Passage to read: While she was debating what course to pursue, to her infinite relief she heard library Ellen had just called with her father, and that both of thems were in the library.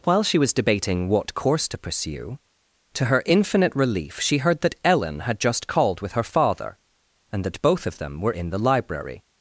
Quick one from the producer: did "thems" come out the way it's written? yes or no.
no